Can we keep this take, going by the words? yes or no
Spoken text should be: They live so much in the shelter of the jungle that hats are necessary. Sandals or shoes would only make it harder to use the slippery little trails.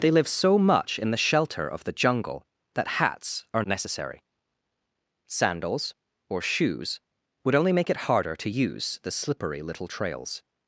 yes